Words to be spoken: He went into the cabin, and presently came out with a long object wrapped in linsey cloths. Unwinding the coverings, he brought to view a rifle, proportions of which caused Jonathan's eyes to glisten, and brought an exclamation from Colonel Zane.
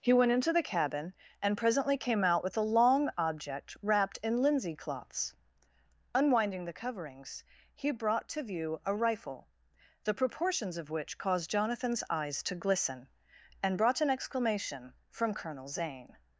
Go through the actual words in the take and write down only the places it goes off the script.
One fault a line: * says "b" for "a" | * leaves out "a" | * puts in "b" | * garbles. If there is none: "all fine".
* puts in "the"